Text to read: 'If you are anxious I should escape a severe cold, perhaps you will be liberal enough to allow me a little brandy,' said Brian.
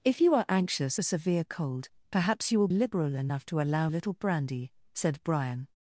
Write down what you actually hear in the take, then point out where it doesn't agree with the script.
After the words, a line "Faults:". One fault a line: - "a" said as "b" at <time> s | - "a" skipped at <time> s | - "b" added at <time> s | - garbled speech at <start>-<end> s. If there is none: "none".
'If you are anxious a severe cold, perhaps you will liberal enough to allow a little brandy,' said Brian.
Faults:
- "I should escape" skipped at 1.0 s
- "be" skipped at 2.7 s
- "me" skipped at 3.9 s